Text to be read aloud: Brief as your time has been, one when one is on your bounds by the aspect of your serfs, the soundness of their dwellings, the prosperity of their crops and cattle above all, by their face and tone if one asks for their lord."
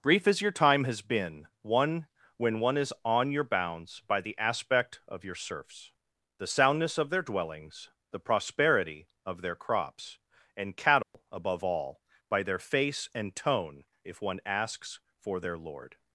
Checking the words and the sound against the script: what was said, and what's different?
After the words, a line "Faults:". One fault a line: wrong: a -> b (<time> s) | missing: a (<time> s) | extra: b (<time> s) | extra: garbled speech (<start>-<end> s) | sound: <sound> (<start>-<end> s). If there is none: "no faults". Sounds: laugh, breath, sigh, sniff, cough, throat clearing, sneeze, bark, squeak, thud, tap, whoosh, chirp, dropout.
Brief as your time has been, one when one is on your bounds by the aspect of your serfs, the soundness of their dwellings, the prosperity of their crops and cattle above all, by their face and tone if one asks for their lord."
Faults:
sound: dropout (11.0-11.1 s)